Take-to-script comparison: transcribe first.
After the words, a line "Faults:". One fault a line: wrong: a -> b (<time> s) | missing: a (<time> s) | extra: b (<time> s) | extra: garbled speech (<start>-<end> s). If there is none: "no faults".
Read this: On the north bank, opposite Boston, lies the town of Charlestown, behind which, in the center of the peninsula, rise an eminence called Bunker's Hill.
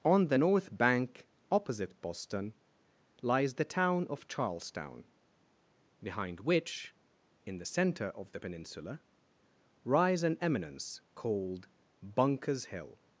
On the north bank, opposite Boston, lies the town of Charlestown, behind which, in the center of the peninsula, rise an eminence called Bunker's Hill.
Faults:
no faults